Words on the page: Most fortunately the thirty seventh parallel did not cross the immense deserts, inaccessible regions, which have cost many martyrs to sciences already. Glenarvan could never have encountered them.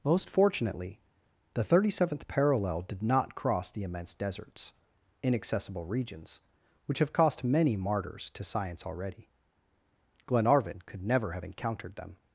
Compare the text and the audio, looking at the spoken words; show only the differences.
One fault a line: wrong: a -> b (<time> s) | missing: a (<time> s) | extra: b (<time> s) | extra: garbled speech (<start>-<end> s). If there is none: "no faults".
wrong: sciences -> science (8.4 s)